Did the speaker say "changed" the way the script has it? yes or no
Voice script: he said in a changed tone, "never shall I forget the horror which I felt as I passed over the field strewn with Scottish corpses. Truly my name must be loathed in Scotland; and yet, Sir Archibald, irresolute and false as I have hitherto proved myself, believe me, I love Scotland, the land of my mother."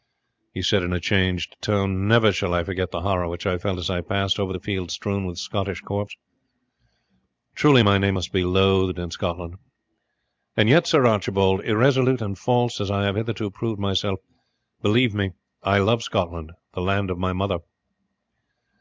yes